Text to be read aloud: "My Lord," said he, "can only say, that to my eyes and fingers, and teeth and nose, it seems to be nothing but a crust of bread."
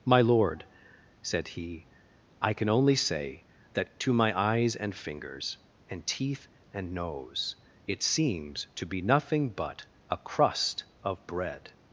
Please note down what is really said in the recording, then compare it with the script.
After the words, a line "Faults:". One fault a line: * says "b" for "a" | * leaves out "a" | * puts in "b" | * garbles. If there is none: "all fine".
"My Lord," said he, "I can only say, that to my eyes and fingers, and teeth and nose, it seems to be nothing but a crust of bread."
Faults:
* puts in "I"